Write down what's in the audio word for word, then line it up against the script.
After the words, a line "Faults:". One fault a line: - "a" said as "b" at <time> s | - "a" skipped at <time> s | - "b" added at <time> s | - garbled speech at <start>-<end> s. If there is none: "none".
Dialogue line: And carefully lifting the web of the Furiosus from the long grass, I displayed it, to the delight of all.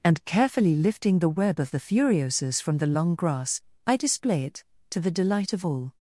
And carefully lifting the web of the Furiosus from the long grass, I display it, to the delight of all.
Faults:
- "displayed" said as "display" at 4.0 s